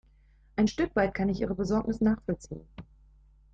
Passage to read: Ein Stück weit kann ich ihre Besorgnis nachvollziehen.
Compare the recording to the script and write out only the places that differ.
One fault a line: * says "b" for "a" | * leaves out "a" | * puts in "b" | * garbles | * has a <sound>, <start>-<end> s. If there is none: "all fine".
all fine